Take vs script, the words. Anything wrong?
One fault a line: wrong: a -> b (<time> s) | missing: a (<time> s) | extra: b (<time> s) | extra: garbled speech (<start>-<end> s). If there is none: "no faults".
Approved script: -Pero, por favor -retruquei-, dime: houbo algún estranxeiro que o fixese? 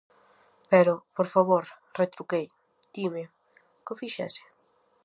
missing: houbo algún estranxeiro (3.2 s)